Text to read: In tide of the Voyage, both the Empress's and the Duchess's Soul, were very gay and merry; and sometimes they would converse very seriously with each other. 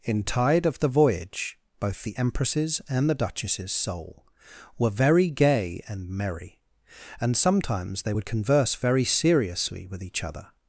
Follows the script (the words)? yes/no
yes